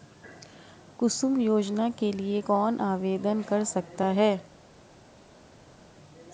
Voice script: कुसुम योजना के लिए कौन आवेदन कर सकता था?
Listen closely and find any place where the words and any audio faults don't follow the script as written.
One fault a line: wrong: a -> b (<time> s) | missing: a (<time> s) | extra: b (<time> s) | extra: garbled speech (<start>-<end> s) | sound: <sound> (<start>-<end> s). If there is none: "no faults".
wrong: था -> है (4.0 s)